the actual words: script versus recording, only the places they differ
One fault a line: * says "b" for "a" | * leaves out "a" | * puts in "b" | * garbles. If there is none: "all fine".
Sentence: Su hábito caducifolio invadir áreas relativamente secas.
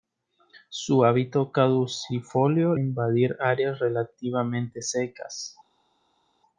all fine